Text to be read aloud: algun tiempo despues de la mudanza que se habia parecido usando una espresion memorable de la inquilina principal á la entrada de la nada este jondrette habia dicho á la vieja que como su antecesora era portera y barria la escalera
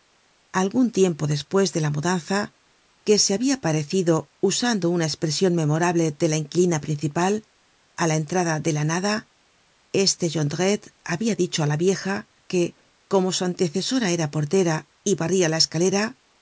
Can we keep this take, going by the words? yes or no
yes